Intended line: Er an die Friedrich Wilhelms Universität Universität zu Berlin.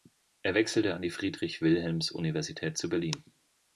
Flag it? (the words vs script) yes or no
yes